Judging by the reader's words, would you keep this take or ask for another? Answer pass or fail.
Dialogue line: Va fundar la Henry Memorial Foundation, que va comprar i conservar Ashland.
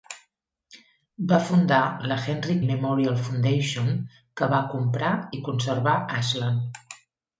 pass